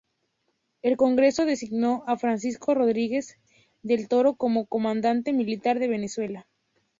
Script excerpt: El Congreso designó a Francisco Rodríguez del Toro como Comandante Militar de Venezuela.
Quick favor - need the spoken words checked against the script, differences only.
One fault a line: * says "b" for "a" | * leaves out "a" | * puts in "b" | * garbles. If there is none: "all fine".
all fine